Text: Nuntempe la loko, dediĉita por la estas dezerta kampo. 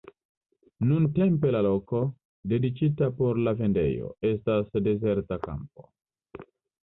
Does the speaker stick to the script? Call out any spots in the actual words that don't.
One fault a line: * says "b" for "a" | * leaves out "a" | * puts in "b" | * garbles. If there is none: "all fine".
* puts in "vendejo"